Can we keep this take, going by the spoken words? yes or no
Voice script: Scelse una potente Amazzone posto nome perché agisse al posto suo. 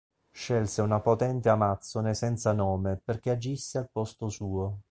no